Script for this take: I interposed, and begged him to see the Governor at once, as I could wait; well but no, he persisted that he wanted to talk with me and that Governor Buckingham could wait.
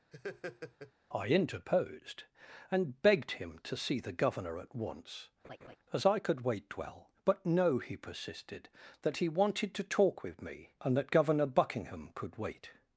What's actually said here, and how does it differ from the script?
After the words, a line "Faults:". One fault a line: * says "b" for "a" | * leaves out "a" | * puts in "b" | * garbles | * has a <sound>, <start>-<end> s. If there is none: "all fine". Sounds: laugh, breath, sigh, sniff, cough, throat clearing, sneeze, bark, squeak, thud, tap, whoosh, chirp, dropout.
I interposed, and begged him to see the Governor at once, as I could wait; well but no, he persisted that he wanted to talk with me and that Governor Buckingham could wait.
Faults:
* has a laugh, 0.1-0.9 s
* has a laugh, 5.4-5.8 s